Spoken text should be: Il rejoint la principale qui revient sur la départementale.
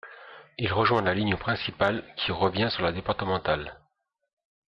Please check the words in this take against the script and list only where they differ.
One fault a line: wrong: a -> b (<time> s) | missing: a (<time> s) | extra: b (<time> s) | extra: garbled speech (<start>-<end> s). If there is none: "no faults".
extra: ligne (1.1 s)